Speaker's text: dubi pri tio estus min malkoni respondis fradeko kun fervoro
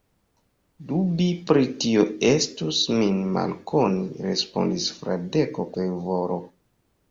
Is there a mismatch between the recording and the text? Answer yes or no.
yes